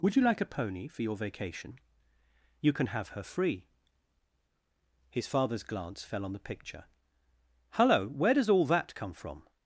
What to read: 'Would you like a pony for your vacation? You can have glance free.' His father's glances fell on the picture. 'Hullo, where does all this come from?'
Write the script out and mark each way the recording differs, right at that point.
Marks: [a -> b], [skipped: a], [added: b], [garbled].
'Would you like a pony for your vacation? You can have [glance -> her] free.' His father's [glances -> glance] fell on the picture. 'Hullo, where does all [this -> that] come from?'